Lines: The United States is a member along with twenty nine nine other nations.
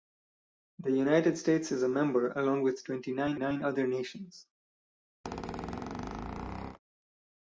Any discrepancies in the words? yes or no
no